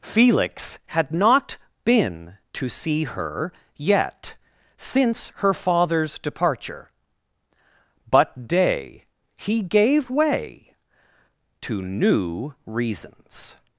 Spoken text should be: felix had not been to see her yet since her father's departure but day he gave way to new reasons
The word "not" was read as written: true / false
true